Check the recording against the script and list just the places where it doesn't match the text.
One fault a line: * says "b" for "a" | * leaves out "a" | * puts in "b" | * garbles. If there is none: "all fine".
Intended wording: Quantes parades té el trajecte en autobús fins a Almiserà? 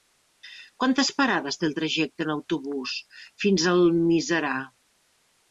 all fine